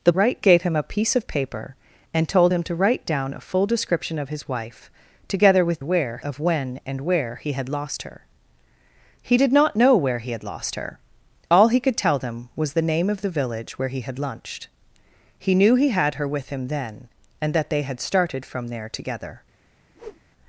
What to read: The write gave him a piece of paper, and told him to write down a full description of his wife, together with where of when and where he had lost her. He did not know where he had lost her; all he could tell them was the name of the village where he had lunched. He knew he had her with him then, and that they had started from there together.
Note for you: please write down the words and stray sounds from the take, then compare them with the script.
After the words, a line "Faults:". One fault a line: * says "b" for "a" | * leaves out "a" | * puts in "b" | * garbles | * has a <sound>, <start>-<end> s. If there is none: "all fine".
The write gave him a piece of paper, and told him to write down a full description of his wife, together with where of when and where he had lost her. He did not know where he had lost her; all he could tell them was the name of the village where he had lunched. He knew he had her with him then, and that they had started from there together.
Faults:
* has a whoosh, 19.9-20.2 s